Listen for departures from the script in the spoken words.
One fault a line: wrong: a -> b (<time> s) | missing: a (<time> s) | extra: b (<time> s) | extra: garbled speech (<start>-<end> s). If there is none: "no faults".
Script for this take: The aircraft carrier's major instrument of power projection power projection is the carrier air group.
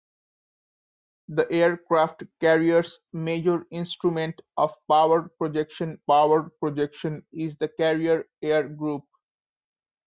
no faults